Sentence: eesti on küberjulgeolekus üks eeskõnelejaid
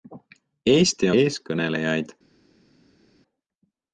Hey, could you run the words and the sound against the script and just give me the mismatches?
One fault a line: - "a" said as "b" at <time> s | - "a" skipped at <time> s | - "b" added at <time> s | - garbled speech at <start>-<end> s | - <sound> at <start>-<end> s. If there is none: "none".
- "on küberjulgeolekus üks" skipped at 1.1 s